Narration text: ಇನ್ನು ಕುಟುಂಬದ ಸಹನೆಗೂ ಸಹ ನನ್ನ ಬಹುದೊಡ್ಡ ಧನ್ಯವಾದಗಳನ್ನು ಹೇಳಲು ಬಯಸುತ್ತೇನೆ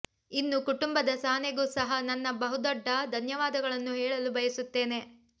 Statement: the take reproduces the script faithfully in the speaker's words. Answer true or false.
true